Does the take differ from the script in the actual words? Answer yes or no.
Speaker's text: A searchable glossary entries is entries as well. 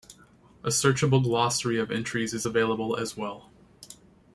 yes